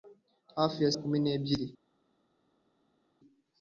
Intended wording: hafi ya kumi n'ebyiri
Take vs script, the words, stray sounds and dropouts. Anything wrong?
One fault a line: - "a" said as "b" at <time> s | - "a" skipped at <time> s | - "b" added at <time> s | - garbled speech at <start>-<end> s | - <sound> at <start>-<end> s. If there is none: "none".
none